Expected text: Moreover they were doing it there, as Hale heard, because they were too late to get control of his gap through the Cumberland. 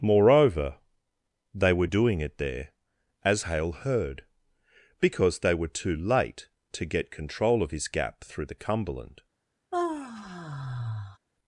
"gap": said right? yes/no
yes